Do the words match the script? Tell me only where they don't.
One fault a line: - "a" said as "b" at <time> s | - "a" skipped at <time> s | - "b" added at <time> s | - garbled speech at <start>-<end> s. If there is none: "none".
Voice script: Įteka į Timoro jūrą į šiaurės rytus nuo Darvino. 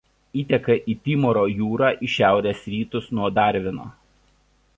none